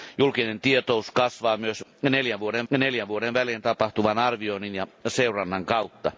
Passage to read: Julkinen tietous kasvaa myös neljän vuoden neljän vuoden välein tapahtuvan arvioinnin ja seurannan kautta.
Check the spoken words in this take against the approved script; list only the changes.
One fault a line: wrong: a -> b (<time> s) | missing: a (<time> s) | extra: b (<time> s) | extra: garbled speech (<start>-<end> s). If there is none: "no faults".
no faults